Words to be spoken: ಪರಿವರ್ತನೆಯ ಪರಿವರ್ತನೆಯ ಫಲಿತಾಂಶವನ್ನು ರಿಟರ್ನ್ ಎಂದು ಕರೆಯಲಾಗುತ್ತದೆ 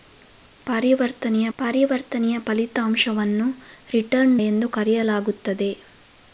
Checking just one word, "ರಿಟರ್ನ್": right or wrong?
right